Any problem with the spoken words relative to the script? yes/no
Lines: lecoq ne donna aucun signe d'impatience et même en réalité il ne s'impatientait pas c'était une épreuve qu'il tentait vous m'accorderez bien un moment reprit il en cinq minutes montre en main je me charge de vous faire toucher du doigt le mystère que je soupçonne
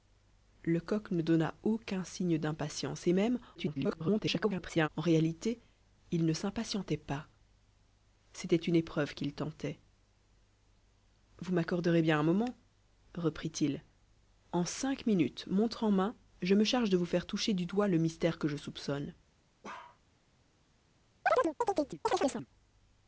yes